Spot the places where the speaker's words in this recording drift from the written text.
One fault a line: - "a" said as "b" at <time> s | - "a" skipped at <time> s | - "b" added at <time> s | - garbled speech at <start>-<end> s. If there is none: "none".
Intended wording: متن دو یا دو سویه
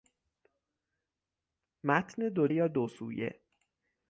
none